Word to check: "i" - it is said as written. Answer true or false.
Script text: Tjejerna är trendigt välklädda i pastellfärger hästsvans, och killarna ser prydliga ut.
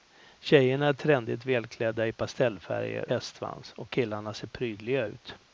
true